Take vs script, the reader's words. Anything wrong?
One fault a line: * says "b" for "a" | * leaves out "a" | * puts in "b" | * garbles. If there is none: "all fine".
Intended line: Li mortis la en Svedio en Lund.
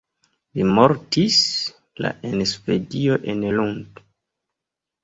all fine